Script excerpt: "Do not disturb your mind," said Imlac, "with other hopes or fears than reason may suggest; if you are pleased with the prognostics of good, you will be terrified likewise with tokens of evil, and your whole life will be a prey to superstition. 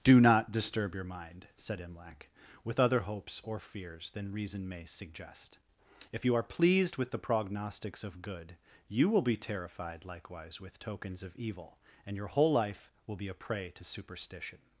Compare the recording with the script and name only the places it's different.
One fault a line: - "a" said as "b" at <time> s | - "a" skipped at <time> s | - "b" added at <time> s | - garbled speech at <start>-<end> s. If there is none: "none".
none